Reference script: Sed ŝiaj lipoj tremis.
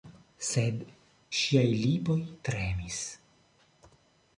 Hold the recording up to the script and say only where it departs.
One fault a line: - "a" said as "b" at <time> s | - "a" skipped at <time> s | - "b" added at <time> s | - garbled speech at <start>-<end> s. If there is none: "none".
none